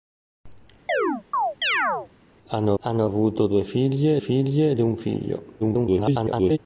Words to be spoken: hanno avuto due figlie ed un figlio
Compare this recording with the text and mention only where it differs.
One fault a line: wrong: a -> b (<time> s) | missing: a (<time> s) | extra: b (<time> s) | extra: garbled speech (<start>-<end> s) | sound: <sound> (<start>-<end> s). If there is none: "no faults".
sound: chirp (0.9-2.1 s)
extra: hanno (2.8 s)
extra: figlie (4.2 s)
extra: garbled speech (5.6-6.6 s)